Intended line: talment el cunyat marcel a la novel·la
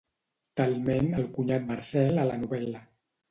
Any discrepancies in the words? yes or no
no